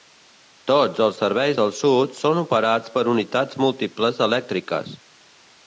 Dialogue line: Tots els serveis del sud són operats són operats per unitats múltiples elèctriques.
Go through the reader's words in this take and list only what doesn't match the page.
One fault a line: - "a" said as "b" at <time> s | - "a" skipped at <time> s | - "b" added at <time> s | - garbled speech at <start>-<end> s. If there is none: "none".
- "són operats" skipped at 2.9 s